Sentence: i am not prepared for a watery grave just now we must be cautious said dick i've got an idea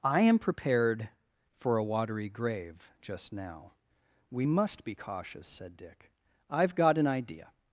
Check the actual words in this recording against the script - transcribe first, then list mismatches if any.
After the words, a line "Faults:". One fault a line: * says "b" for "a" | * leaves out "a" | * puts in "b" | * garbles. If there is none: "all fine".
i am prepared for a watery grave just now we must be cautious said dick i've got an idea
Faults:
* leaves out "not"